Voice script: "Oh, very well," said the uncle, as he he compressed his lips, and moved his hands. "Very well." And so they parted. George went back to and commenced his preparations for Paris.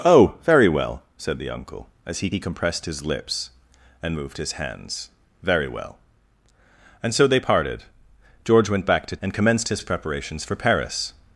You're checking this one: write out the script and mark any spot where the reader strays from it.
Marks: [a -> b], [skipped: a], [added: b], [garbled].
"Oh, very well," said the uncle, as he he compressed his lips, and moved his hands. "Very well." And so they parted. George went back to and commenced his preparations for Paris.